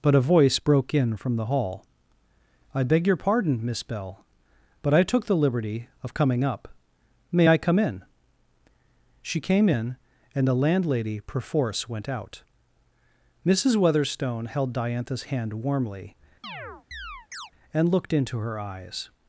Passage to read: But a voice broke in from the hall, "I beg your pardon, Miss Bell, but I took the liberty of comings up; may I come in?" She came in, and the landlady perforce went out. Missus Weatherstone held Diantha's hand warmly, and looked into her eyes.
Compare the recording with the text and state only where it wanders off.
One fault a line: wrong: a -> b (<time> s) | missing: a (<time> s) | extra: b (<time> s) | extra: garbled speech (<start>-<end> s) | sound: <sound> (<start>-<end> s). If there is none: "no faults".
wrong: comings -> coming (6.1 s)
sound: chirp (16.4-17.5 s)